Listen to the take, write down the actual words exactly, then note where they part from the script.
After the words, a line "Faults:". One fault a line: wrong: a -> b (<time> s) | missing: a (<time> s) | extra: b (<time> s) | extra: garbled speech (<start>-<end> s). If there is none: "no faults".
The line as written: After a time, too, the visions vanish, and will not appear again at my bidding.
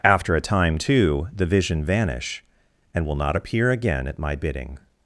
After a time, too, the vision vanish, and will not appear again at my bidding.
Faults:
wrong: visions -> vision (1.4 s)